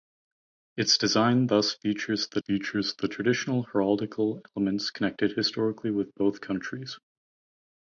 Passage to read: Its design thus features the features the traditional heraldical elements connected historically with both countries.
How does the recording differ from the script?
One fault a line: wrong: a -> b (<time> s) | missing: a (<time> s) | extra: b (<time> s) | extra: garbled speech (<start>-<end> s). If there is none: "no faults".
no faults